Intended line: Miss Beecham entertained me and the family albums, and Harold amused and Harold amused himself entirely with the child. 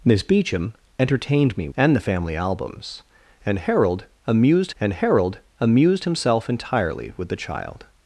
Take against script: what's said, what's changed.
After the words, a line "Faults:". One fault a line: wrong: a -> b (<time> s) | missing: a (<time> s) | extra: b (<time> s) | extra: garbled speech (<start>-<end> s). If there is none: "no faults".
Miss Beecham entertained me and the family albums, and Harold amused and Harold amused himself entirely with the child.
Faults:
no faults